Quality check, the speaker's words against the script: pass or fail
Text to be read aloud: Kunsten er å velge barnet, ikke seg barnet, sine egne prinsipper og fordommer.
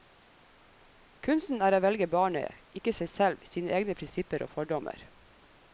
fail